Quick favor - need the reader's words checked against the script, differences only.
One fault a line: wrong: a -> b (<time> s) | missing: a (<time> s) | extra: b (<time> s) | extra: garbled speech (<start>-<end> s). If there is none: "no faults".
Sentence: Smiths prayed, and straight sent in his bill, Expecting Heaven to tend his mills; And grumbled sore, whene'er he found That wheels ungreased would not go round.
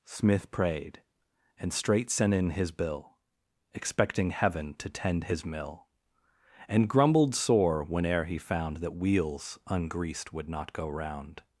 wrong: Smiths -> Smith (0.1 s)
wrong: mills -> mill (5.5 s)